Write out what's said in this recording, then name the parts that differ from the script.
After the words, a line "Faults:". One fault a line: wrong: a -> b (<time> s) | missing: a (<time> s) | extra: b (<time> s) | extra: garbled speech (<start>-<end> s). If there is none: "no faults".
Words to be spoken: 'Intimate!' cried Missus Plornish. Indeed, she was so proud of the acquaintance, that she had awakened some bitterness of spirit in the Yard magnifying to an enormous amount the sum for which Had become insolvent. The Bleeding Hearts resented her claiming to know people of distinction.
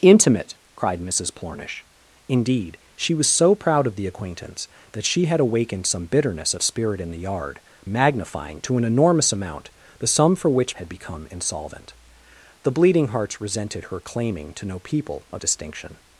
'Intimate!' cried Missus Plornish. Indeed, she was so proud of the acquaintance, that she had awakened some bitterness of spirit in the Yard magnifying to an enormous amount the sum for which Had become insolvent. The Bleeding Hearts resented her claiming to know people of distinction.
Faults:
no faults